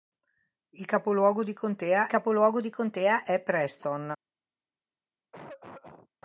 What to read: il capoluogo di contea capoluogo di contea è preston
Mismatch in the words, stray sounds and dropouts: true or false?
true